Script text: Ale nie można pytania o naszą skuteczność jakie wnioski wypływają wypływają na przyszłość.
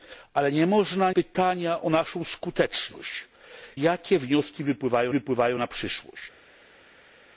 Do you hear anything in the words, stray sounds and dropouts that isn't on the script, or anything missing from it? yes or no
no